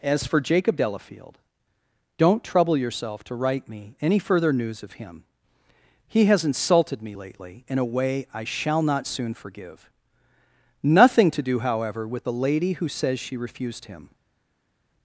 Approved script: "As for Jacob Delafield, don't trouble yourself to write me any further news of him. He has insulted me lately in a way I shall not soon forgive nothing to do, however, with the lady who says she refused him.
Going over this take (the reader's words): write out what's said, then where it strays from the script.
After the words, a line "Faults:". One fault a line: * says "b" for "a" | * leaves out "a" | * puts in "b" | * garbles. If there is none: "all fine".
"As for Jacob Delafield, don't trouble yourself to write me any further news of him. He has insulted me lately in a way I shall not soon forgive nothing to do, however, with the lady who says she refused him.
Faults:
all fine